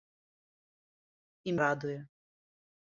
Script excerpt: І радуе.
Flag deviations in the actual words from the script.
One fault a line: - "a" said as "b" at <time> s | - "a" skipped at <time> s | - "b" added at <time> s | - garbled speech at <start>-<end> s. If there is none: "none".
none